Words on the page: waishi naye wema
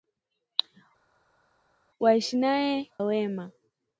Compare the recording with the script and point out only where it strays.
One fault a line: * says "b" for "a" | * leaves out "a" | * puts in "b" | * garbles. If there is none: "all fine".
all fine